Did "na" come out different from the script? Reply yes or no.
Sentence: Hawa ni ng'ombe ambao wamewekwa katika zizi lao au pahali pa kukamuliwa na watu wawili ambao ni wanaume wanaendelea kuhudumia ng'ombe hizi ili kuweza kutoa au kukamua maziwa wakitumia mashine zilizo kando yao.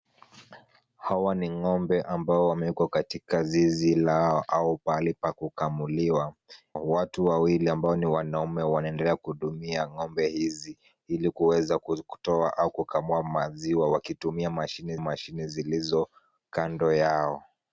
yes